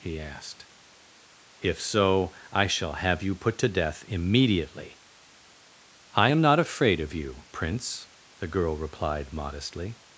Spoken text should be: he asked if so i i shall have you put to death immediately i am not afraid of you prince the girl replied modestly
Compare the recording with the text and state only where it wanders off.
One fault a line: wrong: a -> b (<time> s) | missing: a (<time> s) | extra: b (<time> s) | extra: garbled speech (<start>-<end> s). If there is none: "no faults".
missing: i (2.6 s)